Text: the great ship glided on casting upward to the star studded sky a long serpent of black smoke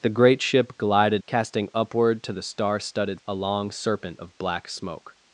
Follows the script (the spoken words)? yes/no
no